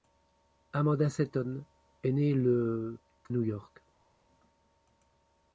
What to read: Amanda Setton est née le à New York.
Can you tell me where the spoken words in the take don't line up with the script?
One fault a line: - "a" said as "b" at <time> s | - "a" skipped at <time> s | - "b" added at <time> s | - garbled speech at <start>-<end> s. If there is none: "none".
- "à" skipped at 3.0 s